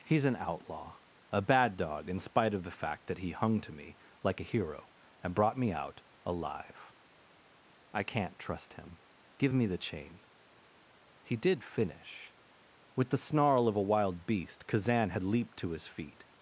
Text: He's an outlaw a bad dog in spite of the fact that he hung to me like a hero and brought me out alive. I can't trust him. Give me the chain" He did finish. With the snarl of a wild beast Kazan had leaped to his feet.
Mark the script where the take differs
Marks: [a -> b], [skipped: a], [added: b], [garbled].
He's an outlaw a bad dog in spite of the fact that he hung to me like a hero and brought me out alive. I can't trust him. Give me the chain" He did finish. With the snarl of a wild beast Kazan had leaped to his feet.